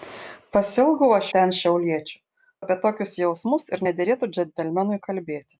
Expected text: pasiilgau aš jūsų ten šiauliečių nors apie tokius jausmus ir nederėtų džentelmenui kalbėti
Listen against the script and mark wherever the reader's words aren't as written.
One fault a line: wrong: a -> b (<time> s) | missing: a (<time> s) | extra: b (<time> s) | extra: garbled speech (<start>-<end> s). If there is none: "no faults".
missing: jūsų (1.3 s)
missing: nors (2.2 s)